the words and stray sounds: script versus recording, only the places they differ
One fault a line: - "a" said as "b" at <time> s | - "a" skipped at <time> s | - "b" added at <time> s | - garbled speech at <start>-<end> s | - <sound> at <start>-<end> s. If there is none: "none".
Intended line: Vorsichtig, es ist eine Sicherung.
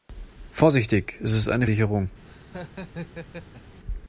- laugh at 2.2-3.8 s